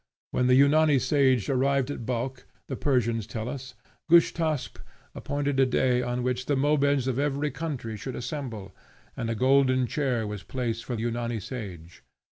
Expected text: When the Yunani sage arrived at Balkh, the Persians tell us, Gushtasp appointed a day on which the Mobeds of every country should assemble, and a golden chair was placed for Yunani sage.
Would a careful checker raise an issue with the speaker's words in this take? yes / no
no